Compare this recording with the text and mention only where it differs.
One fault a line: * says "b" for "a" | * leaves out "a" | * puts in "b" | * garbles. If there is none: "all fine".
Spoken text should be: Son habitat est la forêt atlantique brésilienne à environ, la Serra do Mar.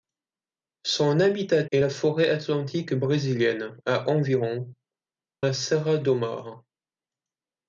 all fine